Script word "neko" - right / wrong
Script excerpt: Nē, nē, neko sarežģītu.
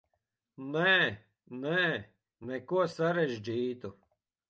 right